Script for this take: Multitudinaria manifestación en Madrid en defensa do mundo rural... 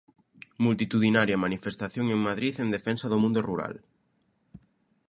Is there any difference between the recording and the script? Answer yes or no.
no